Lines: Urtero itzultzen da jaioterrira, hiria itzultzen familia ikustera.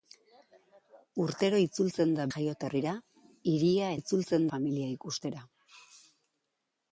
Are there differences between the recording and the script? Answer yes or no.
no